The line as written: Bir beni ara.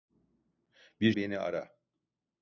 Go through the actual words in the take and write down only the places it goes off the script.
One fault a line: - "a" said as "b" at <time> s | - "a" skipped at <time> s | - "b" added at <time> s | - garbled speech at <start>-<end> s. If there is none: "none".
none